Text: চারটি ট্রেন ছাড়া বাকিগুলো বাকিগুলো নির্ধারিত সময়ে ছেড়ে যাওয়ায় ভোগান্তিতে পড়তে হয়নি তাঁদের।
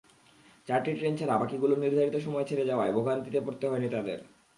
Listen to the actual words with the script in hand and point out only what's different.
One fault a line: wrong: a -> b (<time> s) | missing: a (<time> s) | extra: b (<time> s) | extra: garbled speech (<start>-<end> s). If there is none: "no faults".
missing: বাকিগুলো (1.7 s)